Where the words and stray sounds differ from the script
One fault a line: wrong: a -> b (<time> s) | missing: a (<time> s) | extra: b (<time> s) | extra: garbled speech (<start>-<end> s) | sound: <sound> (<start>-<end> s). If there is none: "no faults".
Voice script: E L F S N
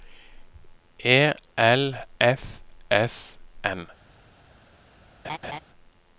sound: laugh (5.2-5.6 s)